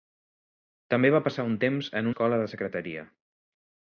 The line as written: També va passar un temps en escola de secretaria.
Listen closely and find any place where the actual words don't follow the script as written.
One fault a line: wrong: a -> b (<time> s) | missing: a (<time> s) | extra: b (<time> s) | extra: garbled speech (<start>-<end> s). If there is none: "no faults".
no faults